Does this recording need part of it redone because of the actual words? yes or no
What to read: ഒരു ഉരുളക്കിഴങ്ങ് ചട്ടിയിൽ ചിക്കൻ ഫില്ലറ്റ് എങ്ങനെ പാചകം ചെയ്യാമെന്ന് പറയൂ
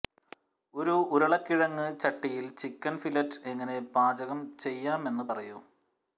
no